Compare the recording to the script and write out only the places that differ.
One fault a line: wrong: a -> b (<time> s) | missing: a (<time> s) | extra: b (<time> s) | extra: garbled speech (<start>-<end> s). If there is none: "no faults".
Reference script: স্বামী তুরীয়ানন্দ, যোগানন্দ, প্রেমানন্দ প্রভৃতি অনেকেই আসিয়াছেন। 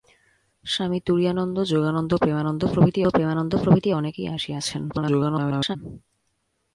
extra: প্রেমানন্দ প্রভৃতি (3.1 s)
extra: garbled speech (4.9-5.8 s)